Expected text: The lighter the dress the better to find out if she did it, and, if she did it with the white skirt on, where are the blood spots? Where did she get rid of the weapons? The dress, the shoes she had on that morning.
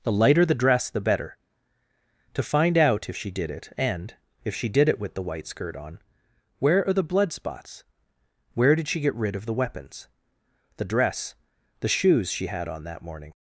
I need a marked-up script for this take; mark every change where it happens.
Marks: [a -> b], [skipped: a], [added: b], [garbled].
The lighter the dress the better to find out if she did it, and, if she did it with the white skirt on, where are the blood spots? Where did she get rid of the weapons? The dress, the shoes she had on that morning.